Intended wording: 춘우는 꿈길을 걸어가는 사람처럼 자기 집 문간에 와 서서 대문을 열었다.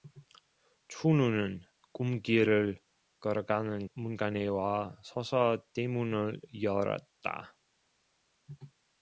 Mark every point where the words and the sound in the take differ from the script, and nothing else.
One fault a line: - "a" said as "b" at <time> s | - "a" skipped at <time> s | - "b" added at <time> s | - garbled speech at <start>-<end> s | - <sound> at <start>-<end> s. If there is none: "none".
- "사람처럼 자기 집" skipped at 3.9 s